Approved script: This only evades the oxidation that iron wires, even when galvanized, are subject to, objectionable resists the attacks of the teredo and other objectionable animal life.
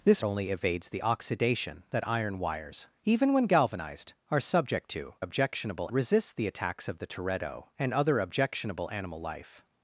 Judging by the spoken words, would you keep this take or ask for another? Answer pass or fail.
pass